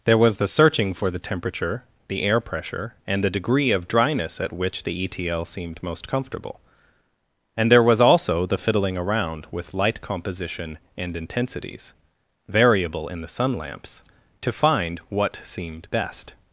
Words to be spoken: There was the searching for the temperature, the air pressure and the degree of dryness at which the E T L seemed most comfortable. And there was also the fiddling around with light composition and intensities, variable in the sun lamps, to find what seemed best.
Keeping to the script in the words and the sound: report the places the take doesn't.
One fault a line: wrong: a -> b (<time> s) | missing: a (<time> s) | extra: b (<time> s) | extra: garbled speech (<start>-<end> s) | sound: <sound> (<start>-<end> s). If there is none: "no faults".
no faults